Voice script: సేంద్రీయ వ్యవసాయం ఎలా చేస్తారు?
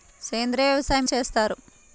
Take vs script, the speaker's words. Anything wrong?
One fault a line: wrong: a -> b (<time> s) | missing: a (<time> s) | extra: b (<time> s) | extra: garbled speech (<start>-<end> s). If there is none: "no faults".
missing: ఎలా (1.1 s)